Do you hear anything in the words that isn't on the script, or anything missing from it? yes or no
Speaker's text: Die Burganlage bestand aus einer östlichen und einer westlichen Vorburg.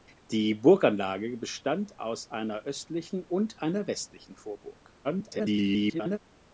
yes